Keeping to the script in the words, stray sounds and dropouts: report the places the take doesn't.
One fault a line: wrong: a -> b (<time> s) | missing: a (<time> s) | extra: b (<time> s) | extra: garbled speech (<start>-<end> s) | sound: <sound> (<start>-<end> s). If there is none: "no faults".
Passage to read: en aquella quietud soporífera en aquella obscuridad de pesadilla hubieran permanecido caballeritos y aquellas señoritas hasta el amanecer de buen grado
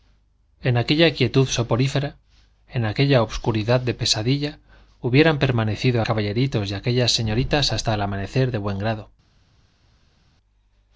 no faults